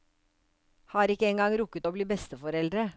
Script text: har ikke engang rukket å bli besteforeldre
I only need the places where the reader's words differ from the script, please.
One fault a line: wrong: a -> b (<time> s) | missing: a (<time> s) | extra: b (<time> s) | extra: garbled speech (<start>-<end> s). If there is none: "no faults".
no faults